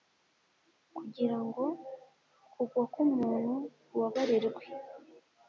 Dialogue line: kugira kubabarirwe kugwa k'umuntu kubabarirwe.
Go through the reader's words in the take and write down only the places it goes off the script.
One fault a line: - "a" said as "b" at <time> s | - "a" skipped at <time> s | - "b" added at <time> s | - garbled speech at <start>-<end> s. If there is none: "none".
- "kubabarirwe" said as "ngo" at 1.4 s